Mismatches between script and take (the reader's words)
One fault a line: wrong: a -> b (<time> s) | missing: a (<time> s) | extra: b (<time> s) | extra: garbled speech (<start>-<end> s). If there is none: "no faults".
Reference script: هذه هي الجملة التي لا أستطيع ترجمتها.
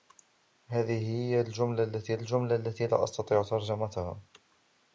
extra: الجملة التي (2.1 s)